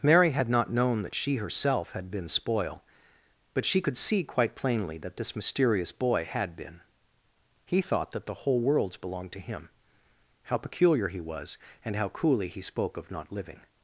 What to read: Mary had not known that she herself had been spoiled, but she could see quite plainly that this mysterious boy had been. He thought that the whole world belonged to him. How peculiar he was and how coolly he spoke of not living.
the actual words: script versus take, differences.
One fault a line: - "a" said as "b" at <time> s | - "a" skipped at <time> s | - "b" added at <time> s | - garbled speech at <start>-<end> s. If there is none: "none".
- "spoiled" said as "spoil" at 2.3 s
- "world" said as "worlds" at 8.6 s